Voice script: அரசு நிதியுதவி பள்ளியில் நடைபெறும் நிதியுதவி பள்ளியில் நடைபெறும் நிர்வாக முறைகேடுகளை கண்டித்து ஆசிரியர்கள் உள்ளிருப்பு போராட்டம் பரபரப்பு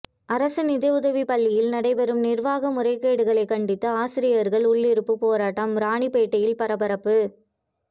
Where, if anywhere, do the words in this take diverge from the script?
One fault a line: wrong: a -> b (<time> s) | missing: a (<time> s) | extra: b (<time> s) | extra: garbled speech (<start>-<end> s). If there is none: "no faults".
missing: நிதியுதவி பள்ளியில் நடைபெறும் (2.2 s)
extra: ராணிப்பேட்டையில் (5.8 s)